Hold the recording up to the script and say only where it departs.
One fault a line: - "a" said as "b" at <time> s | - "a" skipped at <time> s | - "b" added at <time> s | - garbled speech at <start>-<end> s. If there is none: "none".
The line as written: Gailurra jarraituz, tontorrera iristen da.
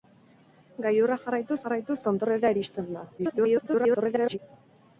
- "jarraituz" added at 1.7 s
- garbled speech at 3.2-4.4 s